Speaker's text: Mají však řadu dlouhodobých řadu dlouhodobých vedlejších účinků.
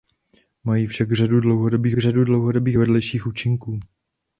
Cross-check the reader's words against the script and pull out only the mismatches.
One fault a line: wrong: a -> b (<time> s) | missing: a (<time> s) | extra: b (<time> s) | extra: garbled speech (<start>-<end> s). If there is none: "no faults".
no faults